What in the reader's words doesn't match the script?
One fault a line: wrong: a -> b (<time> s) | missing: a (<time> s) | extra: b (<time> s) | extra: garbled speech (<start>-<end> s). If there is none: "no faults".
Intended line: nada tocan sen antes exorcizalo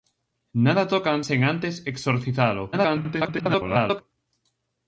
extra: garbled speech (2.7-4.0 s)